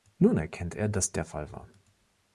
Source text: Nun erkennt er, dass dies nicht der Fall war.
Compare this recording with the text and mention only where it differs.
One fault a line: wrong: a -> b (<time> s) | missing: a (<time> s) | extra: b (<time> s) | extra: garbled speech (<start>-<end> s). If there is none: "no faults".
missing: dies nicht (1.1 s)